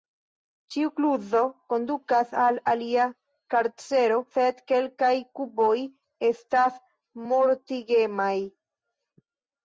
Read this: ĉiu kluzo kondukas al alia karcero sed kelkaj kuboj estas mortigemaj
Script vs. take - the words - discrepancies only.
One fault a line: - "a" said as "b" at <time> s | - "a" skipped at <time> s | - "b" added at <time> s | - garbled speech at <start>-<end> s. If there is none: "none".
none